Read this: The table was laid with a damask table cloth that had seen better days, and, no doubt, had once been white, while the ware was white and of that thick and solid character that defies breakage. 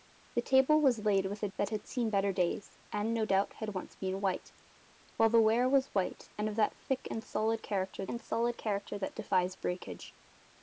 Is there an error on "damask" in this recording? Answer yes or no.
yes